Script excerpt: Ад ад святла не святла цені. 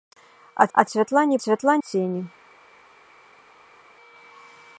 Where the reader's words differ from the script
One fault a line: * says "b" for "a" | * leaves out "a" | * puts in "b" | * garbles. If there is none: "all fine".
all fine